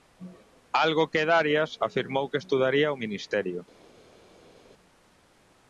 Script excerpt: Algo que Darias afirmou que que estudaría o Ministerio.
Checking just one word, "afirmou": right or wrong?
right